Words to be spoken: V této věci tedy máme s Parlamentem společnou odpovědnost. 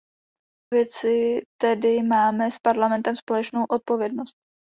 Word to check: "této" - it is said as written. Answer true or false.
false